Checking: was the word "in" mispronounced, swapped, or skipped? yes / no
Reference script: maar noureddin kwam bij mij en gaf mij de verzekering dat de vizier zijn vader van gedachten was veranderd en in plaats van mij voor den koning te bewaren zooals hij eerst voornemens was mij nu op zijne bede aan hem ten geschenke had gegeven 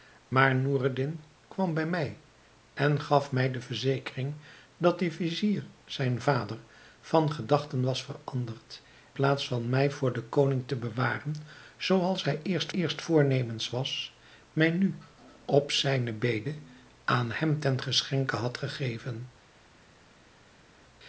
yes